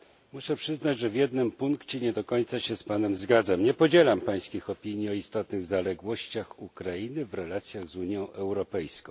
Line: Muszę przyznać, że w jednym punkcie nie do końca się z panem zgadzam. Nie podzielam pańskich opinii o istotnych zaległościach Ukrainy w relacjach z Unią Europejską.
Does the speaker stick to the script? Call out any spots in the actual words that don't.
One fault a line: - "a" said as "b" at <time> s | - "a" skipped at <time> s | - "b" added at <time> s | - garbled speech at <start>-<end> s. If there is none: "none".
none